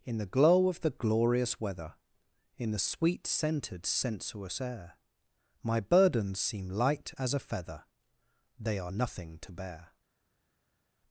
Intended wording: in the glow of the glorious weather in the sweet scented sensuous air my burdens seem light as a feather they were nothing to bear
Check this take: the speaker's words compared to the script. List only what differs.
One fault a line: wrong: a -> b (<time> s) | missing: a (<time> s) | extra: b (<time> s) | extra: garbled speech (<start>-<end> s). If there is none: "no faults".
wrong: were -> are (8.8 s)